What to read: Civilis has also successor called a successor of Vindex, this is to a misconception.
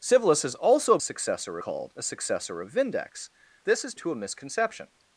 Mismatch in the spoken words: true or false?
false